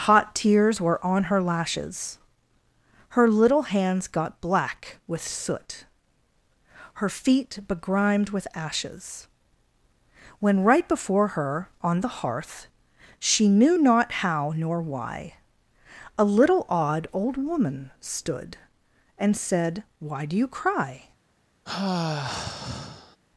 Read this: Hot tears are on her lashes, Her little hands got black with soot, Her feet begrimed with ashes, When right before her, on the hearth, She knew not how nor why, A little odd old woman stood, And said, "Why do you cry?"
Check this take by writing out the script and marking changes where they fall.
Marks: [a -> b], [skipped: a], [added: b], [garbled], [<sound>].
Hot tears [are -> were] on her lashes, Her little hands got black with soot, Her feet begrimed with ashes, When right before her, on the hearth, She knew not how nor why, A little odd old woman stood, And said, "Why do you cry?" [sigh]